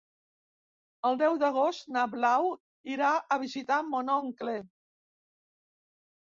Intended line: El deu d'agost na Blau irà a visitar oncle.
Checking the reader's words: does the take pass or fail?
fail